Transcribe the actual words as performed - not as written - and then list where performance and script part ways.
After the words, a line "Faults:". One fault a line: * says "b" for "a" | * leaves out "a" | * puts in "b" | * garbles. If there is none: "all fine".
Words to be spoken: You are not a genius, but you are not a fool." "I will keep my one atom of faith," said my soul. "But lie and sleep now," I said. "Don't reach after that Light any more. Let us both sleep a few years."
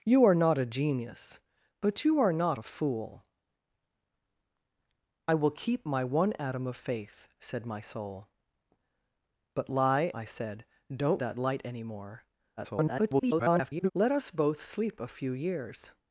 You are not a genius, but you are not a fool." "I will keep my one atom of faith," said my soul. "But lie," I said. "Don't that Light any more. [garbled] Let us both sleep a few years."
Faults:
* leaves out "and sleep now"
* leaves out "reach after"
* garbles